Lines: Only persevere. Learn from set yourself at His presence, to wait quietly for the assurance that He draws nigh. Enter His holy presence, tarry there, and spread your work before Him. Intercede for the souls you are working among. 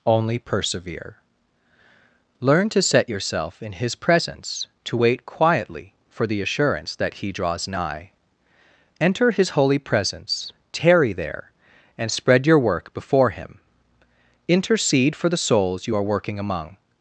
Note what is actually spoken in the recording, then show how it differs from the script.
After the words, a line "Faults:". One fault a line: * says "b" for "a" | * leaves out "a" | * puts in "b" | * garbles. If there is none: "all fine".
Only persevere. Learn to set yourself in His presence, to wait quietly for the assurance that He draws nigh. Enter His holy presence, tarry there, and spread your work before Him. Intercede for the souls you are working among.
Faults:
* says "to" for "from"
* says "in" for "at"